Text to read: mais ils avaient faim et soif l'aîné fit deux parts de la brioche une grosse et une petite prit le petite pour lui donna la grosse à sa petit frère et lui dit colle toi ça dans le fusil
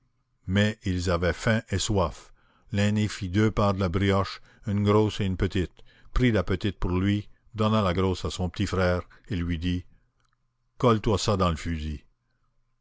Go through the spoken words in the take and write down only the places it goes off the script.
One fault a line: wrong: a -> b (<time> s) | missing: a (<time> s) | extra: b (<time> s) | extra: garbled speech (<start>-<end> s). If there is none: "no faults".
wrong: le -> la (6.3 s)
wrong: sa -> son (8.3 s)